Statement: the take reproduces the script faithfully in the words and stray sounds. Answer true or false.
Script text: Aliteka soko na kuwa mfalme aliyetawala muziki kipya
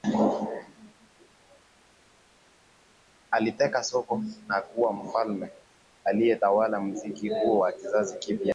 false